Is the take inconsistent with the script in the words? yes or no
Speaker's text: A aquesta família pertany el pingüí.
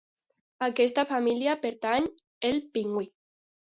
no